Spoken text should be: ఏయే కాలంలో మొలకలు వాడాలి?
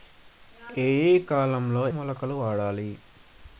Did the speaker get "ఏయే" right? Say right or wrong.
right